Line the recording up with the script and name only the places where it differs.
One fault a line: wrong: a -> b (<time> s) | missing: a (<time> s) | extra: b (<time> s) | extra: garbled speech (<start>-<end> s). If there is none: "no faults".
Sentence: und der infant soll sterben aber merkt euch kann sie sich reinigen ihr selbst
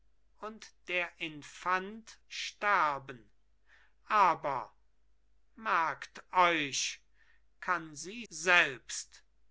missing: soll (2.2 s)
missing: sich reinigen ihr (8.2 s)